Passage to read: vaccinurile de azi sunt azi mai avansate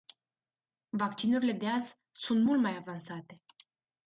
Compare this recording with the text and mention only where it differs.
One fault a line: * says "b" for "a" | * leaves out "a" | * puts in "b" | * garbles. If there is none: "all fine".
* says "mult" for "azi"